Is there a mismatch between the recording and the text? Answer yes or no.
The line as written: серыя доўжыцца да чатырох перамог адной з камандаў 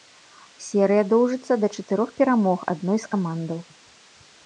no